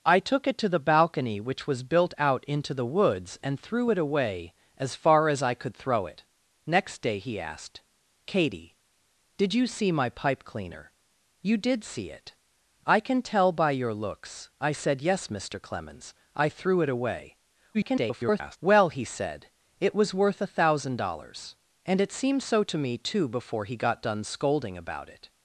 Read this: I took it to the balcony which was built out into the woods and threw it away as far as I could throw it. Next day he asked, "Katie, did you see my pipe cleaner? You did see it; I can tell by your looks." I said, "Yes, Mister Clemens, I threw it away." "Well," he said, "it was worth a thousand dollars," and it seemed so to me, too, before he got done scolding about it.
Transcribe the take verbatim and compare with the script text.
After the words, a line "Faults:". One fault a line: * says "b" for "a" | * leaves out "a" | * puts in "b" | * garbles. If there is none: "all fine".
I took it to the balcony which was built out into the woods and threw it away as far as I could throw it. Next day he asked, "Katie, did you see my pipe cleaner? You did see it; I can tell by your looks." I said, "Yes, Mister Clemens, I threw it away." [garbled] "Well," he said, "it was worth a thousand dollars," and it seemed so to me, too, before he got done scolding about it.
Faults:
* garbles